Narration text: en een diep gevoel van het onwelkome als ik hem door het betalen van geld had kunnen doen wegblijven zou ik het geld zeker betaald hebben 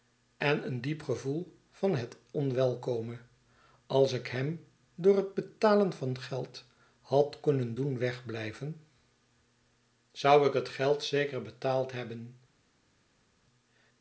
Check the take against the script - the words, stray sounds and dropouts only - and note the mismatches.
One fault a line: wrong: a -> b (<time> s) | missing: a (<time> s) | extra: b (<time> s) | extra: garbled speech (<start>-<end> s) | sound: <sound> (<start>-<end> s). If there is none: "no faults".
no faults